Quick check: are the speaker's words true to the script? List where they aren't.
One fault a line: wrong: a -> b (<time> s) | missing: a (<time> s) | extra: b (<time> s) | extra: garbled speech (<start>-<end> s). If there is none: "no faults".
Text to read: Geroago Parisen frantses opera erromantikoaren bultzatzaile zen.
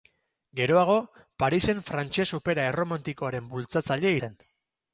no faults